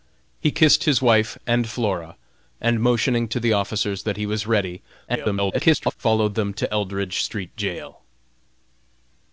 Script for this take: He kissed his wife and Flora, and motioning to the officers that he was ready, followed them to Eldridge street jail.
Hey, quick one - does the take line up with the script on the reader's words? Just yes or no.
no